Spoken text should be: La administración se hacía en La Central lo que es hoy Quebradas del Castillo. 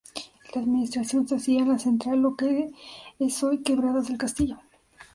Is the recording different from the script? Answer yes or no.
no